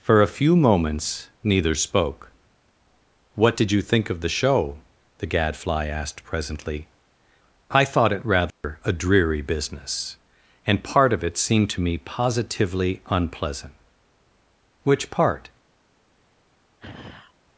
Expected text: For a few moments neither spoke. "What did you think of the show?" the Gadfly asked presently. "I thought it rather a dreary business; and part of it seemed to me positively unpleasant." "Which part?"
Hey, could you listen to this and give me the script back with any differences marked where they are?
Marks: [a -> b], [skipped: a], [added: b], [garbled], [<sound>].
For a few moments neither spoke. "What did you think of the show?" the Gadfly asked presently. "I thought it rather [dropout] a dreary business; and part of it seemed to me positively unpleasant." "Which part?" [sigh]